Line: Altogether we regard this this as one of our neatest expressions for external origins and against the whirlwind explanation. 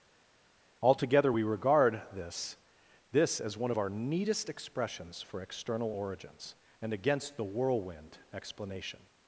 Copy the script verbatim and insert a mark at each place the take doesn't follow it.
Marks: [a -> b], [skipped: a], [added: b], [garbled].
Altogether we regard this this as one of our neatest expressions for external origins and against the whirlwind explanation.